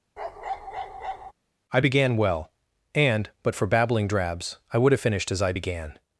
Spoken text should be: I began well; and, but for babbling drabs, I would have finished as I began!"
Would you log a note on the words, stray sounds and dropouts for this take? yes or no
yes